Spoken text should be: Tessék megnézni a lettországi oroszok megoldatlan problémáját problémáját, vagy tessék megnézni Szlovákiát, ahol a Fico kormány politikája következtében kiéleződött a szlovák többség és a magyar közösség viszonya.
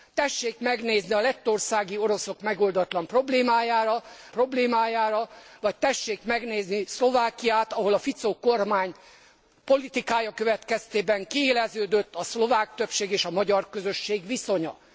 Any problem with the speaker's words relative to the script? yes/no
no